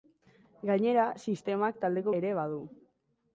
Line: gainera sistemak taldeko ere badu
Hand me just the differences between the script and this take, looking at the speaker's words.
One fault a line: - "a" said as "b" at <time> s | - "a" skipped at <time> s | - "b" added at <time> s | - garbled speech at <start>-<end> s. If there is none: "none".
none